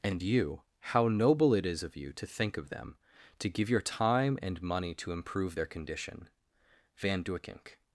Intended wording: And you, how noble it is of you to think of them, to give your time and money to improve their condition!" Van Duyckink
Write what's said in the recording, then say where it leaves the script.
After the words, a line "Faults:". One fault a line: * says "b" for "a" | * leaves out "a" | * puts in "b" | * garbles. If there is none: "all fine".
And you, how noble it is of you to think of them, to give your time and money to improve their condition!" Van Duyckink
Faults:
all fine